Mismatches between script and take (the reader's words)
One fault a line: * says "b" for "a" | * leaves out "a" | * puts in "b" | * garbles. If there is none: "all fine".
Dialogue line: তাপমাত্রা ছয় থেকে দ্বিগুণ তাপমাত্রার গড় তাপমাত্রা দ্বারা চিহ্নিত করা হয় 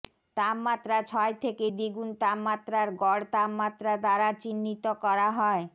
all fine